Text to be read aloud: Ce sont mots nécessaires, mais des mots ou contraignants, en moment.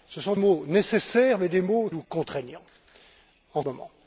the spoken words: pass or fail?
pass